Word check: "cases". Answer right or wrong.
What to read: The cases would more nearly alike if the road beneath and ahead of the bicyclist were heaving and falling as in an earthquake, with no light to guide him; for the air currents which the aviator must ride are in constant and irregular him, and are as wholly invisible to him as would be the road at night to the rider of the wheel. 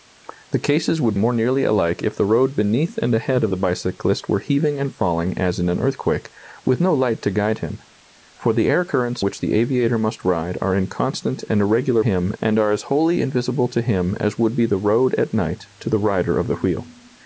right